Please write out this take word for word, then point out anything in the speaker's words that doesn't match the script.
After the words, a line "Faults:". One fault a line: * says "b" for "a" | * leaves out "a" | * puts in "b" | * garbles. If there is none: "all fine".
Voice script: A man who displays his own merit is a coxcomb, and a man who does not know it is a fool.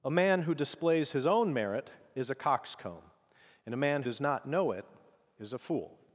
A man who displays his own merit is a coxcomb, and a man does not know it is a fool.
Faults:
* leaves out "who"